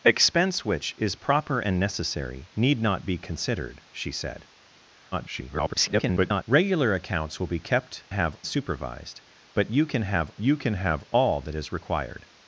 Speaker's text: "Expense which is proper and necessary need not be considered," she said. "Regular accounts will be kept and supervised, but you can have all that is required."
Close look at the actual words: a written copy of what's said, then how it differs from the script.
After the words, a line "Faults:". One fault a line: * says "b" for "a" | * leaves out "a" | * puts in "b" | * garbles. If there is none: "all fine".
"Expense which is proper and necessary need not be considered," she said. [garbled] "Regular accounts will be kept have supervised, but you can have you can have all that is required."
Faults:
* garbles
* says "have" for "and"
* puts in "you can have"